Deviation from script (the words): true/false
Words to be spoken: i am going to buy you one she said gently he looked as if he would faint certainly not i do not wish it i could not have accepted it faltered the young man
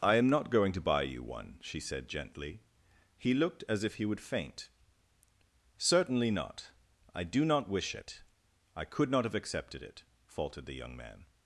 true